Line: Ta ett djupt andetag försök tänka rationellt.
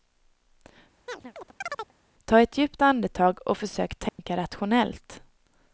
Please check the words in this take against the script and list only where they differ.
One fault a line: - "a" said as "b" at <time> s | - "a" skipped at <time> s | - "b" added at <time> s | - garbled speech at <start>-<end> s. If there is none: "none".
- "och" added at 3.5 s